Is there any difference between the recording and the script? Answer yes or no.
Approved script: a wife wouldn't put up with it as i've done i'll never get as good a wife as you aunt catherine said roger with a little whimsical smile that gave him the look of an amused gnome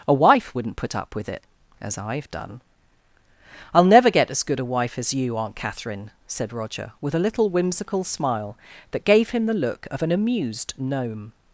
no